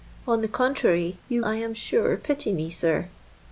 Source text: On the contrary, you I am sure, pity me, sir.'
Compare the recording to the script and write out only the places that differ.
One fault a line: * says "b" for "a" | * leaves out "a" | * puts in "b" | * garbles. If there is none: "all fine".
all fine